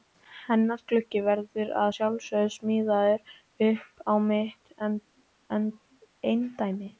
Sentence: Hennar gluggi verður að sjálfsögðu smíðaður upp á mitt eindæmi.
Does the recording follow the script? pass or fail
pass